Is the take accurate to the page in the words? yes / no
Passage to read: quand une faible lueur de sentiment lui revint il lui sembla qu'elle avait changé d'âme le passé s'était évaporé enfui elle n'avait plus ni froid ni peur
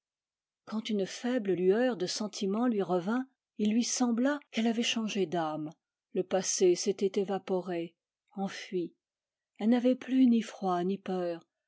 yes